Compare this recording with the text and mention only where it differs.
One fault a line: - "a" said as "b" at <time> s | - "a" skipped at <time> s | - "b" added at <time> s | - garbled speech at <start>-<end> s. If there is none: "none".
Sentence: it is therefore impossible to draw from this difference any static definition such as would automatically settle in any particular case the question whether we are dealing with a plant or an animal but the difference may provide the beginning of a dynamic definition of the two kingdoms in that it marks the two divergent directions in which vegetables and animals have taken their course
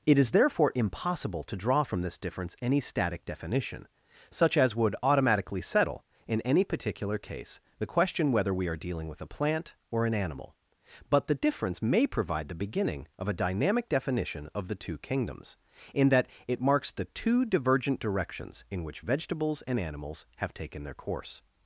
none